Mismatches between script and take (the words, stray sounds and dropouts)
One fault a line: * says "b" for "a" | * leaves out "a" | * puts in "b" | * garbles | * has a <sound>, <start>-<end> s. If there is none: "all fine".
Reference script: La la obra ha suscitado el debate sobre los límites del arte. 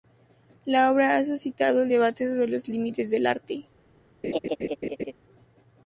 * leaves out "la"
* has a laugh, 4.2-5.1 s